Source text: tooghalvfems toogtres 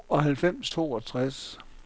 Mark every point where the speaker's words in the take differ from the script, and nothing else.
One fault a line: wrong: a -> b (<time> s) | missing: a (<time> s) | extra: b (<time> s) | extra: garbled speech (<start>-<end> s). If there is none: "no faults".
no faults